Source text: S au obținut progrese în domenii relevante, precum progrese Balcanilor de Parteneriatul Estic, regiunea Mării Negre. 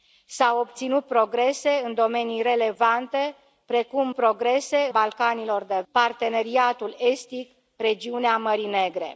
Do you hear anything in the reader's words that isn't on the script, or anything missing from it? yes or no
no